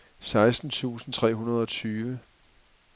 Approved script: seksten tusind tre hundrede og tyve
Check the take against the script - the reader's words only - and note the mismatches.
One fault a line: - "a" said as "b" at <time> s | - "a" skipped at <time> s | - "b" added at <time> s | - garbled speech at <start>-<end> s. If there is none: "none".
none